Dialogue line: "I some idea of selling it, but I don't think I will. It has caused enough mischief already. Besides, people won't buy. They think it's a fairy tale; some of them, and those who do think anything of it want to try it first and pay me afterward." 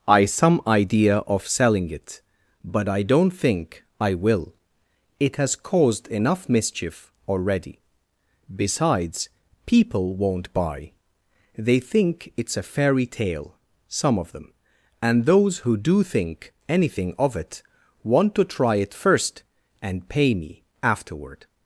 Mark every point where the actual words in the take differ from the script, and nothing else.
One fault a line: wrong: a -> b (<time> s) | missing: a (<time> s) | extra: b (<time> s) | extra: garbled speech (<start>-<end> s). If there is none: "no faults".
no faults